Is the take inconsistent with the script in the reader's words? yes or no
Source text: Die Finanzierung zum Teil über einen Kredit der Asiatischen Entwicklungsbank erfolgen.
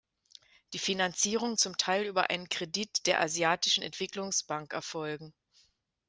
no